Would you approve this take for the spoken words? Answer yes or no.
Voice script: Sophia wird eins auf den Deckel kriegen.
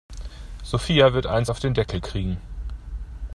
yes